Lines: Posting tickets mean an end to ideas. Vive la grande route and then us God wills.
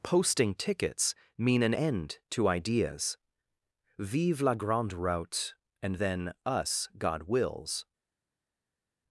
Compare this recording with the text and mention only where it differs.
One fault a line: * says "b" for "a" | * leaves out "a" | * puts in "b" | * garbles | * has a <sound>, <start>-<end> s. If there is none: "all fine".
all fine